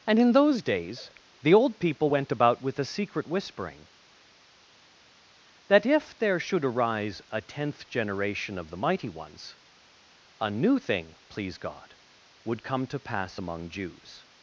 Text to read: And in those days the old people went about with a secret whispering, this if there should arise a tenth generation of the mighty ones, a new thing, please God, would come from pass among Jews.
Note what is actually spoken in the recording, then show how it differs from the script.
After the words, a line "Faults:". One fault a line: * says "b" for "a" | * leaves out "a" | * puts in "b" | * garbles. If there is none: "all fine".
And in those days the old people went about with a secret whispering, that if there should arise a tenth generation of the mighty ones, a new thing, please God, would come to pass among Jews.
Faults:
* says "that" for "this"
* says "to" for "from"